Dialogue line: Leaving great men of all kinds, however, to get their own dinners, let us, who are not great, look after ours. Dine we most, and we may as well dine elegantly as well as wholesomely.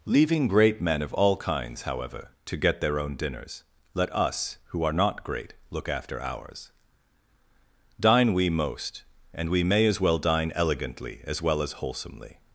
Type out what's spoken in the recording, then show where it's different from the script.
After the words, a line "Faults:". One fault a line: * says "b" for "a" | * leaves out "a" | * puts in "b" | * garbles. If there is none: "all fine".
Leaving great men of all kinds, however, to get their own dinners, let us, who are not great, look after ours. Dine we most, and we may as well dine elegantly as well as wholesomely.
Faults:
all fine